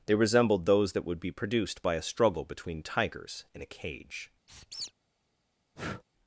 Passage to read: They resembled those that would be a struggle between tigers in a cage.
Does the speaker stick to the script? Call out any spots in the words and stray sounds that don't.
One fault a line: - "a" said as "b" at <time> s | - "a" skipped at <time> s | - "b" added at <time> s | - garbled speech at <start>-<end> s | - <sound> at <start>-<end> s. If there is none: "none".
- "produced by" added at 1.3 s
- squeak at 4.5-4.9 s
- breath at 5.8-6.0 s